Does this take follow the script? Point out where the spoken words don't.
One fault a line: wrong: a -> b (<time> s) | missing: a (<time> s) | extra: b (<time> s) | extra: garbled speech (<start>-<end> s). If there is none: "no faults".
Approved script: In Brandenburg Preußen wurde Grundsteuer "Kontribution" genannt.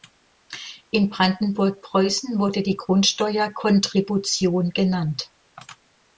extra: die (2.6 s)